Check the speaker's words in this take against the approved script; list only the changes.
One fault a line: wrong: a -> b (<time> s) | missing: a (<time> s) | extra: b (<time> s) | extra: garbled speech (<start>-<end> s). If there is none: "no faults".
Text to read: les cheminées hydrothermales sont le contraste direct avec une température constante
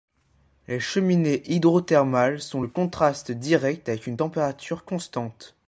no faults